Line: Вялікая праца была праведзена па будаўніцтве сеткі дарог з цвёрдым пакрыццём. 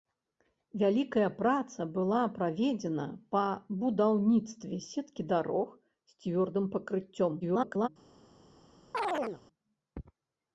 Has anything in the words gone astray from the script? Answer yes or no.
yes